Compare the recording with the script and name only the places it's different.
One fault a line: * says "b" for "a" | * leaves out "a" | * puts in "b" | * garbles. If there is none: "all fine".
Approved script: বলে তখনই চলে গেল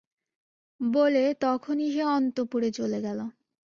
* puts in "সে অন্তঃপুরে"